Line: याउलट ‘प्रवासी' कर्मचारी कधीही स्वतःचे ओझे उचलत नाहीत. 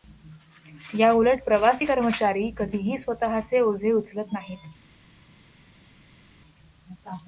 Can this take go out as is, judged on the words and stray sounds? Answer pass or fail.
pass